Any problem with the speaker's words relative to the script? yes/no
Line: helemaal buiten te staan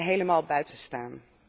no